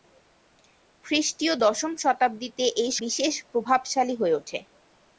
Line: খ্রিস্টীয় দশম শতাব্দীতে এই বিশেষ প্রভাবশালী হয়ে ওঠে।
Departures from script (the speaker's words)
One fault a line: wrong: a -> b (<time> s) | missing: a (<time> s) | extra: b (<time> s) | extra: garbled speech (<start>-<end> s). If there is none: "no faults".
no faults